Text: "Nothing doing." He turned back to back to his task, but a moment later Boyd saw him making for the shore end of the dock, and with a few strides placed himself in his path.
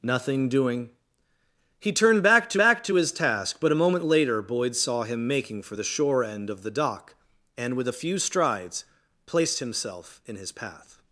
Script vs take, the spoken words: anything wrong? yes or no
no